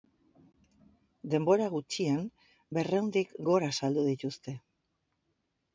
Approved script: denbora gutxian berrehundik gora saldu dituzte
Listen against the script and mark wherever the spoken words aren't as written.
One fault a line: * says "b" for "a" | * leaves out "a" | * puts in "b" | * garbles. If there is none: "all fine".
all fine